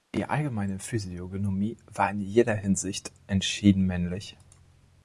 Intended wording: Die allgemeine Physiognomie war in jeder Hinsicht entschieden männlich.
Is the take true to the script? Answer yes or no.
yes